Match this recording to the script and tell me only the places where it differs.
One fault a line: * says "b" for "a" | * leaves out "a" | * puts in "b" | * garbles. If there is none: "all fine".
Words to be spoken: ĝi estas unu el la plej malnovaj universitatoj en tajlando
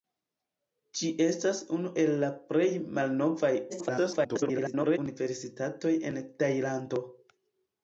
* garbles